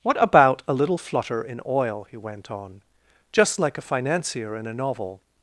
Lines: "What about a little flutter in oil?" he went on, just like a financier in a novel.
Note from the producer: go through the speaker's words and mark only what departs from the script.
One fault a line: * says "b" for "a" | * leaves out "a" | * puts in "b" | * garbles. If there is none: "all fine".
all fine